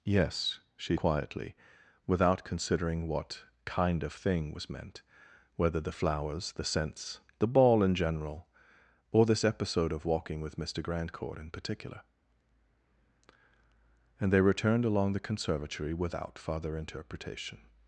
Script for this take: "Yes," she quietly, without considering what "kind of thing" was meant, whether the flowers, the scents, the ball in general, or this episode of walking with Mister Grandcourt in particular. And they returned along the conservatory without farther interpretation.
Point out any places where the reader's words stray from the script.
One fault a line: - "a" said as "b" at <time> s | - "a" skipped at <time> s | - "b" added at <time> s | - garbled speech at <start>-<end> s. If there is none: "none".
none